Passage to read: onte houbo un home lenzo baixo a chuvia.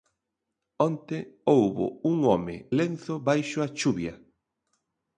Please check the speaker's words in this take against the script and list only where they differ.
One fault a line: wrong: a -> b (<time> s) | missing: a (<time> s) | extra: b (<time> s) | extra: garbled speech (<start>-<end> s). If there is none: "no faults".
no faults